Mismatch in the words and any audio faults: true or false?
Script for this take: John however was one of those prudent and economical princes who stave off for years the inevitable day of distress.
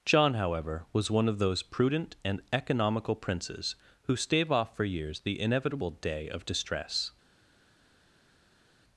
false